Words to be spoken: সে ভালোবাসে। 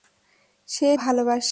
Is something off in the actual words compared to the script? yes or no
no